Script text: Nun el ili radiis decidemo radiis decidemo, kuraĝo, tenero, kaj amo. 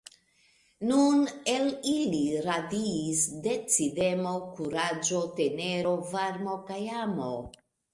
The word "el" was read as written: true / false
true